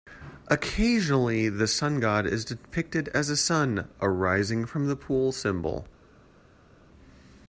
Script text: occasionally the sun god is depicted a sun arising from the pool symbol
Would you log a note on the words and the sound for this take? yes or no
yes